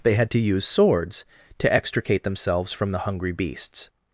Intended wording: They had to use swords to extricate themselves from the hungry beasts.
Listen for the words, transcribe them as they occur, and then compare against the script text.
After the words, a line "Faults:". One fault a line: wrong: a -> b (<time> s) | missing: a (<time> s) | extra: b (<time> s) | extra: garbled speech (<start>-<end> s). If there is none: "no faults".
They had to use swords to extricate themselves from the hungry beasts.
Faults:
no faults